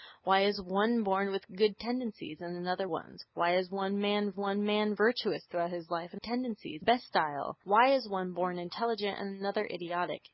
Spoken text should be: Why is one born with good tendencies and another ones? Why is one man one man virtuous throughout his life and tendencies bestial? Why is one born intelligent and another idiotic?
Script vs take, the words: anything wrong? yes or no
no